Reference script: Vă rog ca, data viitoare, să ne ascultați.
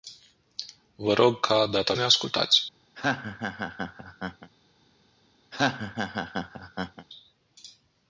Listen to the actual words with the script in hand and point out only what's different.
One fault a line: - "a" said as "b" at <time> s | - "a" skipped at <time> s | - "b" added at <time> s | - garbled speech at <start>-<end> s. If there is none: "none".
- "viitoare să" skipped at 1.9 s